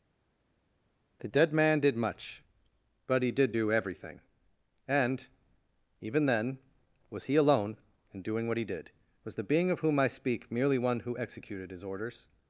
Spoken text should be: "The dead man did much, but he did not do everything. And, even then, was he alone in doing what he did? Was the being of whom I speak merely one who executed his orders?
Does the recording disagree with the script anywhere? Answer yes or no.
yes